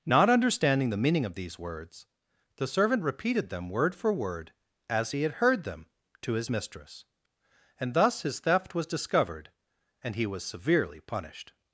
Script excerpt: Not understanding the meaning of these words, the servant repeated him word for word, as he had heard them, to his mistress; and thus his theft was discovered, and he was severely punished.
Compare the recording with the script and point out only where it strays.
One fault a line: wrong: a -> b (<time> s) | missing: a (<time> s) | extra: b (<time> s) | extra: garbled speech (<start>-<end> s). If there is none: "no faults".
wrong: him -> them (3.5 s)